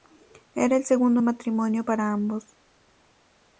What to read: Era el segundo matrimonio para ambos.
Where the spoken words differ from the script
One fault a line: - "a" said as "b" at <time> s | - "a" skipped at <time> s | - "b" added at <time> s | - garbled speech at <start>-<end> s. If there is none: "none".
none